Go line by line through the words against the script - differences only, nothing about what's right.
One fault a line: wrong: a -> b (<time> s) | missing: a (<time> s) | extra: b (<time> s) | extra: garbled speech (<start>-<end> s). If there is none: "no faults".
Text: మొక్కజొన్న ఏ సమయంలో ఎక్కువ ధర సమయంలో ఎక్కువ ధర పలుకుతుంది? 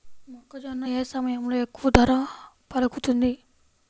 missing: సమయంలో ఎక్కువ ధర (2.1 s)